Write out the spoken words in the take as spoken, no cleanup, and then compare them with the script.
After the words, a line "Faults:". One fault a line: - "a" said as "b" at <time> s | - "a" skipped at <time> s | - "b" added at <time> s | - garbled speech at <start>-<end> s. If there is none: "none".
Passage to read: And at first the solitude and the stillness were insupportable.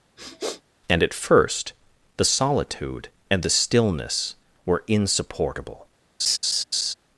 And at first the solitude and the stillness were insupportable.
Faults:
none